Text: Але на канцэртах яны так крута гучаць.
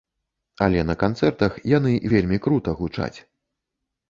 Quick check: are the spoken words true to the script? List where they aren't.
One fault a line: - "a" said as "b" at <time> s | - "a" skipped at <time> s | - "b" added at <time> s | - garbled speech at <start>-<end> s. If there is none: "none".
- "так" said as "вельмі" at 2.1 s